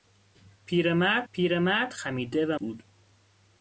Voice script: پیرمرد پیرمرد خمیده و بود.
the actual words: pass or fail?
pass